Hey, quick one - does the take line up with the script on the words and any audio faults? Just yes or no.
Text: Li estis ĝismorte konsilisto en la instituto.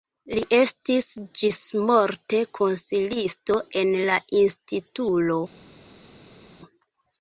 yes